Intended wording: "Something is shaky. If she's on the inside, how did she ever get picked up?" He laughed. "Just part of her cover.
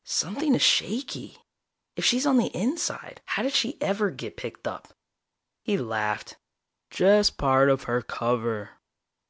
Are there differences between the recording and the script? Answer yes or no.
no